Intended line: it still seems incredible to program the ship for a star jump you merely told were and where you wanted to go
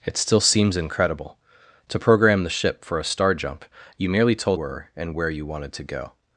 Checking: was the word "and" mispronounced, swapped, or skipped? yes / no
no